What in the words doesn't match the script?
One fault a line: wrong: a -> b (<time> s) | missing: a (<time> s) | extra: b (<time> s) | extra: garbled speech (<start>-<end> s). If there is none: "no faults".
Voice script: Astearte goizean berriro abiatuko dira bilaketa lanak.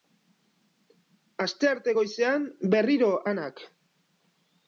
missing: abiatuko dira bilaketa (3.1 s)